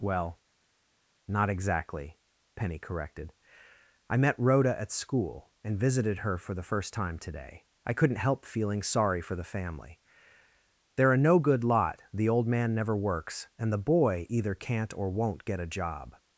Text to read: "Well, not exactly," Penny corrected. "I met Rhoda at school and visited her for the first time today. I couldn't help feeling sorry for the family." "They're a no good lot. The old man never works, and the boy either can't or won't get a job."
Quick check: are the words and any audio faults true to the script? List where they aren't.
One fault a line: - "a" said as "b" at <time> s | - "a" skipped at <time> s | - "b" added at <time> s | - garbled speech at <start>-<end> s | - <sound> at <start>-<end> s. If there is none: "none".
none